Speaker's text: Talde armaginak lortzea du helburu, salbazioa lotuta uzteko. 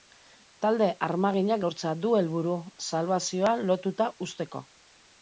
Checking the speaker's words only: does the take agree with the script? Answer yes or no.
yes